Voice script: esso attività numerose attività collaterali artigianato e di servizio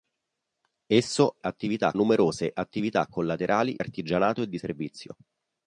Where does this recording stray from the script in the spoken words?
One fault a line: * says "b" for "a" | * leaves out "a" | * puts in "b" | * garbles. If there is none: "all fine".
all fine